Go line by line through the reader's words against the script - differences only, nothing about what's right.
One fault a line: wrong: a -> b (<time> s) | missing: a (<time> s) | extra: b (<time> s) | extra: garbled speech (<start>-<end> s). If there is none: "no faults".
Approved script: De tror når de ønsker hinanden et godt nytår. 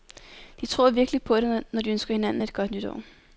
extra: virkelig på det (0.9 s)